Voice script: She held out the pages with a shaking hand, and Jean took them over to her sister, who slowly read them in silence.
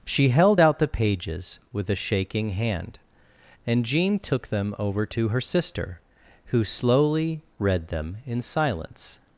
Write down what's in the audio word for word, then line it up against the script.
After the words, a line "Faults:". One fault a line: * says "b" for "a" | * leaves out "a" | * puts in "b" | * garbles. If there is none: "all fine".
She held out the pages with a shaking hand, and Jean took them over to her sister, who slowly read them in silence.
Faults:
all fine